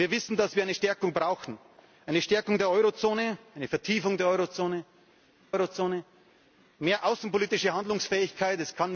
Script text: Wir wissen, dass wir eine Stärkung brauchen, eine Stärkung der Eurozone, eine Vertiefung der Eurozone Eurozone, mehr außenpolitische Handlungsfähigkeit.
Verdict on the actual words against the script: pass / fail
pass